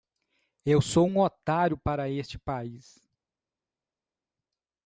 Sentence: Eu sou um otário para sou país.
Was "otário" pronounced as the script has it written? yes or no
yes